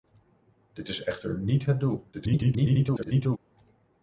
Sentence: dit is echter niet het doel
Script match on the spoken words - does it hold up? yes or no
no